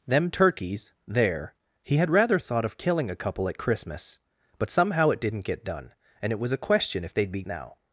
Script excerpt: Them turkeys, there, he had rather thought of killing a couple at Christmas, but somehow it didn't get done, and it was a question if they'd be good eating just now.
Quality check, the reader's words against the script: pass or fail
fail